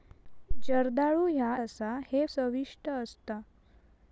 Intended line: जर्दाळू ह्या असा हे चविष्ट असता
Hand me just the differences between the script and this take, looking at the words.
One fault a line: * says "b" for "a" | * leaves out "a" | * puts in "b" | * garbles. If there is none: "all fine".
all fine